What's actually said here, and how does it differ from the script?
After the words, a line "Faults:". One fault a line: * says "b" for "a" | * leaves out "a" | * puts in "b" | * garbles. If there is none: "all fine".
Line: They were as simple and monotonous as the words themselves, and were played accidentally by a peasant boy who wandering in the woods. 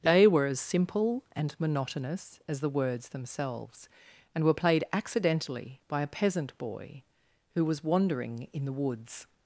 They were as simple and monotonous as the words themselves, and were played accidentally by a peasant boy who was wandering in the woods.
Faults:
* puts in "was"